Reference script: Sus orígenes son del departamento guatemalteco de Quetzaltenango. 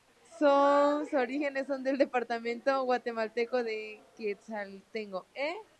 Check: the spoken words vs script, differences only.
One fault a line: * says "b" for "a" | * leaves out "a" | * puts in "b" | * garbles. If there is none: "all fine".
all fine